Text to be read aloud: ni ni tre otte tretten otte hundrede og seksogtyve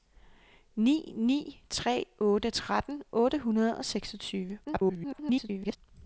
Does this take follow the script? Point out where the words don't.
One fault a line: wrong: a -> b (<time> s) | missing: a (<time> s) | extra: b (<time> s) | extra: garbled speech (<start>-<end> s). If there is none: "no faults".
extra: garbled speech (4.6-5.8 s)